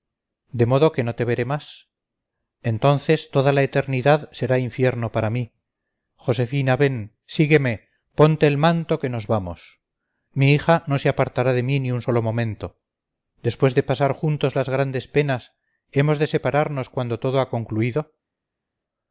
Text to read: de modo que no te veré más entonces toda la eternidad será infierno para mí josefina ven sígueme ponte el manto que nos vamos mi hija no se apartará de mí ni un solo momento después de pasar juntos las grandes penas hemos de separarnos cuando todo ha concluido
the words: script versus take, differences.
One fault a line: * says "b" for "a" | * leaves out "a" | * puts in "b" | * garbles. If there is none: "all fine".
all fine